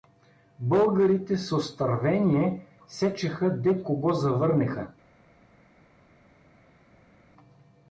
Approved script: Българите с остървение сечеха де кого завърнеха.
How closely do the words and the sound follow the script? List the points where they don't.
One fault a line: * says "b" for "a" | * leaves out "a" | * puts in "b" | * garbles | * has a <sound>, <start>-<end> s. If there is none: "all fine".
all fine